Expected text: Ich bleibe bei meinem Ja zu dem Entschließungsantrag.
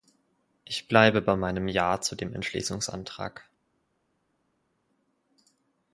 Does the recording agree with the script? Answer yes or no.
yes